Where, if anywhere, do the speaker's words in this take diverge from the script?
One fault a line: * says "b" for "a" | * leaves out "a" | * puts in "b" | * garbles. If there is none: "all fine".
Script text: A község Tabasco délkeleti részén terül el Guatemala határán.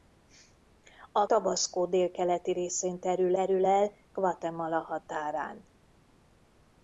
* leaves out "község"
* puts in "terül"